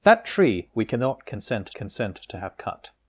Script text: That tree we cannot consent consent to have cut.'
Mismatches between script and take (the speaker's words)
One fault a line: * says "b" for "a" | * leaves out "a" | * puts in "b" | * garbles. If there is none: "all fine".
all fine